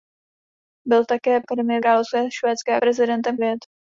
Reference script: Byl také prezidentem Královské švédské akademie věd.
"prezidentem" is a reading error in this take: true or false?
true